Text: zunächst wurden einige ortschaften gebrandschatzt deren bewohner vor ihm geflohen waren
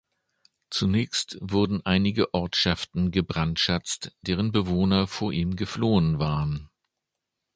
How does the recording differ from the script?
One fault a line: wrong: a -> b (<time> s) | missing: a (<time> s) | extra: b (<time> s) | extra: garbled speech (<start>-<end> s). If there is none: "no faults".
no faults